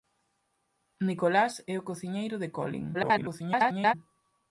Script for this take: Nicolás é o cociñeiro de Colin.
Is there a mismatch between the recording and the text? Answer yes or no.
yes